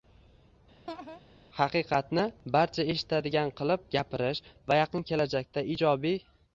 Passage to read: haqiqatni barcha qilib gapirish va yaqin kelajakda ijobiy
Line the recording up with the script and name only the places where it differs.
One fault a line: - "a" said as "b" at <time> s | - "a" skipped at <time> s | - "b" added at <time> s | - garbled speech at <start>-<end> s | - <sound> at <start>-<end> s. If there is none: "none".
- laugh at 0.9-1.2 s
- "eshitadigan" added at 2.9 s